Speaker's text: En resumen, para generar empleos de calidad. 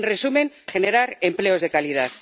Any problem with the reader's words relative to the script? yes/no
yes